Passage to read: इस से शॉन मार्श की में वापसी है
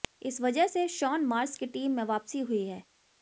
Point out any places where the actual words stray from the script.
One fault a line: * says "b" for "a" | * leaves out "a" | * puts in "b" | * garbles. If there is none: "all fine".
* puts in "वजह"
* puts in "टीम"
* puts in "हुई"